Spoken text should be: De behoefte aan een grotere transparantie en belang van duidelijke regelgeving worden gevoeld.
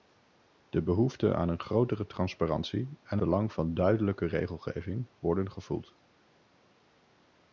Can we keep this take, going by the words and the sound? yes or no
yes